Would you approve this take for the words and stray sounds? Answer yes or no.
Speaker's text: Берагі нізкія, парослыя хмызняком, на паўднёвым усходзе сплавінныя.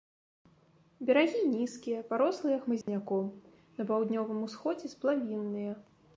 no